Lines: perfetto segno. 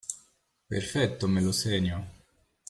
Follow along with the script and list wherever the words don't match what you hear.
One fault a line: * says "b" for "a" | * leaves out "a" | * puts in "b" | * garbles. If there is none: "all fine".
* puts in "me lo"